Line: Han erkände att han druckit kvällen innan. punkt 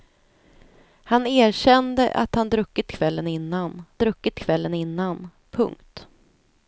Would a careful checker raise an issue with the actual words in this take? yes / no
yes